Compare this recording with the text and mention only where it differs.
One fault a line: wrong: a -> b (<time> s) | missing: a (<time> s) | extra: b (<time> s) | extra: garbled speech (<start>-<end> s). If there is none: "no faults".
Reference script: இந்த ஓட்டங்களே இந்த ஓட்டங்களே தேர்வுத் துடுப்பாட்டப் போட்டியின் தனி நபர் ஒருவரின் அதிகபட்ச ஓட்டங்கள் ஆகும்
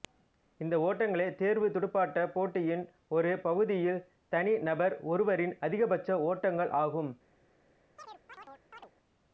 missing: இந்த ஓட்டங்களே (1.3 s)
extra: ஒரு பகுதியில் (3.1 s)